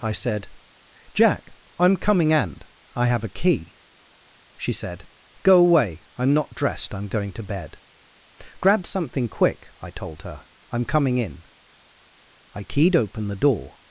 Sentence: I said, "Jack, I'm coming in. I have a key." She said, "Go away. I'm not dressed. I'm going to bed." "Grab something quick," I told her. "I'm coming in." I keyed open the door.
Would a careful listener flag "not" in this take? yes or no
no